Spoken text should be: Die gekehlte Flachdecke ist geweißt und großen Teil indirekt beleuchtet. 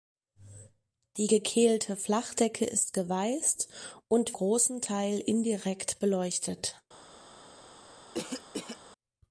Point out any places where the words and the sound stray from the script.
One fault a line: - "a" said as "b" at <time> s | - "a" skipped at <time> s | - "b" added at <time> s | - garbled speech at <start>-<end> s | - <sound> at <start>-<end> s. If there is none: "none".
- cough at 8.1-8.8 s